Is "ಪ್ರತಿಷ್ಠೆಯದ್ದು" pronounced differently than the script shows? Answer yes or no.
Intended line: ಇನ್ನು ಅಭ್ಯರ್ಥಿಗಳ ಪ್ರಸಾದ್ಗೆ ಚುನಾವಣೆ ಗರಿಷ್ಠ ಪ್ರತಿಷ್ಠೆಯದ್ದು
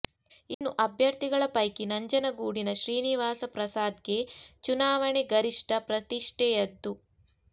no